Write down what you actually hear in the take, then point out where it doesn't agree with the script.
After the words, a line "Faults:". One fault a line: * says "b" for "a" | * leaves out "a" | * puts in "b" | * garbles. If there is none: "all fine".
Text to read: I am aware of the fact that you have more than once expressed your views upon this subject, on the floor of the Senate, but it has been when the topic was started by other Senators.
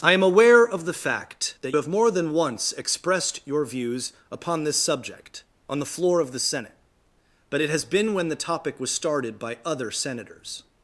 I am aware of the fact that have more than once expressed your views upon this subject, on the floor of the Senate, but it has been when the topic was started by other Senators.
Faults:
* leaves out "you"